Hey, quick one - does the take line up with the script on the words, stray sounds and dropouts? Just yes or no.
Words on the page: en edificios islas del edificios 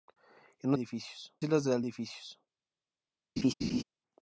no